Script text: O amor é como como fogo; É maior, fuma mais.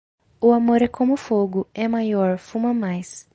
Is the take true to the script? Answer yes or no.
no